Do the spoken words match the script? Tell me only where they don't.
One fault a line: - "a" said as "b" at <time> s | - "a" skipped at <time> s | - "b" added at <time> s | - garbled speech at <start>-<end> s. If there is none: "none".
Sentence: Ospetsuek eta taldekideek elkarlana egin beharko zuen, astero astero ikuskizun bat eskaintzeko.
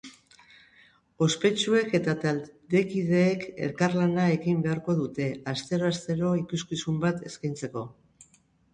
- "zuen" said as "dute" at 5.0 s